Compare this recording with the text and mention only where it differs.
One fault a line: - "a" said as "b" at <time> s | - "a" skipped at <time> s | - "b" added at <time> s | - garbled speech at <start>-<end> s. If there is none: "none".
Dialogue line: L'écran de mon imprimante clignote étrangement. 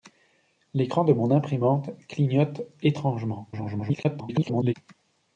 - garbled speech at 3.5-4.7 s